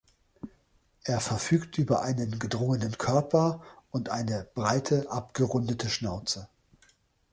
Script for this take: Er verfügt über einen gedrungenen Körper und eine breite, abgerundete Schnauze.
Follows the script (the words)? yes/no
yes